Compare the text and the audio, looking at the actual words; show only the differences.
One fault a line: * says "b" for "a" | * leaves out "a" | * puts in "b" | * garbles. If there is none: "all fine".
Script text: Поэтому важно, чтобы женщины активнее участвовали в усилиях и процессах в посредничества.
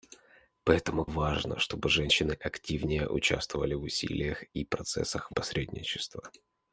all fine